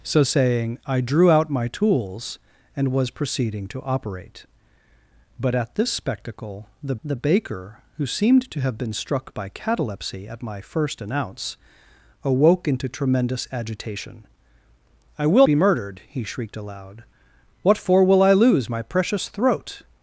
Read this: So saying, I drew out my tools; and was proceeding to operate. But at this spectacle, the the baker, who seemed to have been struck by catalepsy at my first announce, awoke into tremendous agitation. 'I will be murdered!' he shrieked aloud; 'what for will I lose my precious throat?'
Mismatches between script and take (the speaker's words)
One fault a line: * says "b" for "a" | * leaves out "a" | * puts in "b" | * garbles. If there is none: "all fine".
all fine